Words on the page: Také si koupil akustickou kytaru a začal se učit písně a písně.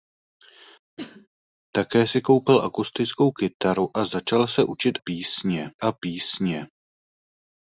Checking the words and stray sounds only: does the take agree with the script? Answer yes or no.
no